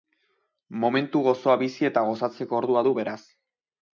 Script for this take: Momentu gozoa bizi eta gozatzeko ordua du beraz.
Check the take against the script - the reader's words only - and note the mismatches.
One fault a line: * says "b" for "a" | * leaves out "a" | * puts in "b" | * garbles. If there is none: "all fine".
all fine